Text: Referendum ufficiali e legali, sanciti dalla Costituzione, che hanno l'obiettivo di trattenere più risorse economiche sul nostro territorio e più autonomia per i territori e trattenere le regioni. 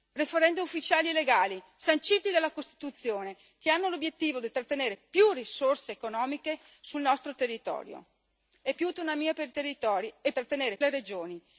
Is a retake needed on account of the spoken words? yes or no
no